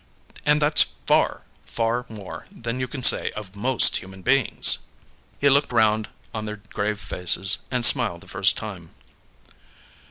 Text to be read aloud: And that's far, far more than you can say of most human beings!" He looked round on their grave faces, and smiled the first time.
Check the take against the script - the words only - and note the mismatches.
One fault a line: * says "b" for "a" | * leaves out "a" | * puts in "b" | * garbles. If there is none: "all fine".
all fine